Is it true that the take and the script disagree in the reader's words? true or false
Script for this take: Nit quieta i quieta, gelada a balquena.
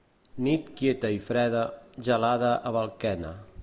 true